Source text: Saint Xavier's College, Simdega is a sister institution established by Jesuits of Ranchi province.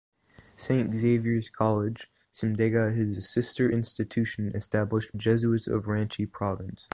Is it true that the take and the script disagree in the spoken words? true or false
true